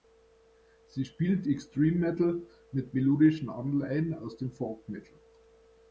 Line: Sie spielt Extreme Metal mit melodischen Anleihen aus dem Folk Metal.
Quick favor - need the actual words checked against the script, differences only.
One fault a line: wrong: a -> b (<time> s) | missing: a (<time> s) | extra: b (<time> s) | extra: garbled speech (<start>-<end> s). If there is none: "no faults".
no faults